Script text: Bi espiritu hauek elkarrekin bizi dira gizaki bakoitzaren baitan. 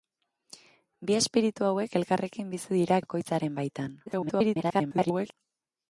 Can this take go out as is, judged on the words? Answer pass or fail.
fail